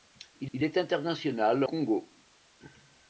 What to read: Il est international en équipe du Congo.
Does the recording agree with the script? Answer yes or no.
no